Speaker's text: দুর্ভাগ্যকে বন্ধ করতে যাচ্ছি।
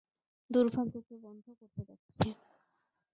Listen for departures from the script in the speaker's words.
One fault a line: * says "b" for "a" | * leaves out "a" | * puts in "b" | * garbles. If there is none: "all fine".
all fine